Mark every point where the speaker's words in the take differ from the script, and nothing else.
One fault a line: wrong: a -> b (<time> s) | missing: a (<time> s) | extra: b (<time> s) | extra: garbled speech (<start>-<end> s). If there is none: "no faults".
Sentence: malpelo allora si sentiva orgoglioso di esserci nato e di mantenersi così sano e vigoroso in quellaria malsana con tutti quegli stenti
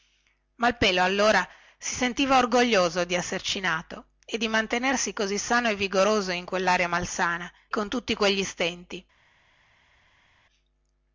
no faults